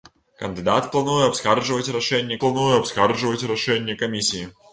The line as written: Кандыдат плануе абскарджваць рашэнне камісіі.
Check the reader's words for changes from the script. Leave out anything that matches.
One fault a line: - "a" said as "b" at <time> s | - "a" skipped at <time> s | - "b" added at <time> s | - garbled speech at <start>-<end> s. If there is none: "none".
- "плануе абскарджваць рашэнне" added at 2.4 s